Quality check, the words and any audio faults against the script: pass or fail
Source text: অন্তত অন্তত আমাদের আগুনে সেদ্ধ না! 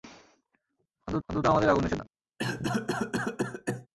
fail